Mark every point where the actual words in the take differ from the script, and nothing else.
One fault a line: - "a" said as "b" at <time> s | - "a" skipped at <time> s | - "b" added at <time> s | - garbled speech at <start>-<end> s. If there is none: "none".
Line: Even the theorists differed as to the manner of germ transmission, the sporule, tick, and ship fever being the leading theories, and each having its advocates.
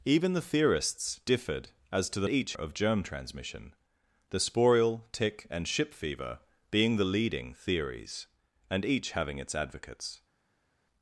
- "manner" said as "each" at 2.3 s